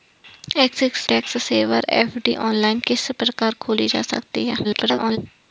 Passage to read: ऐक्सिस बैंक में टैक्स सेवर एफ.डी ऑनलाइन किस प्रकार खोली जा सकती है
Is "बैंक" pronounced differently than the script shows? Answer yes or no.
yes